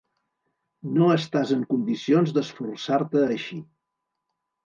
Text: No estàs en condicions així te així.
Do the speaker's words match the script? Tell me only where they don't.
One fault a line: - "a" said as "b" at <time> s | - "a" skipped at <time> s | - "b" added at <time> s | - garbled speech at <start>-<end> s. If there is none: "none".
- "així" said as "d'esforçar" at 2.4 s